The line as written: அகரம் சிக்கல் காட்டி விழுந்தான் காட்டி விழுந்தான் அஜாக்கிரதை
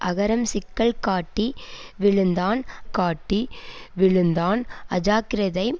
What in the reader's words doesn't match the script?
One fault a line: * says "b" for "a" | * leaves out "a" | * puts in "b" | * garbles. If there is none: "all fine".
all fine